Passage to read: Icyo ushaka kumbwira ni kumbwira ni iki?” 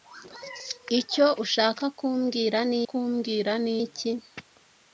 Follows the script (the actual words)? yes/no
yes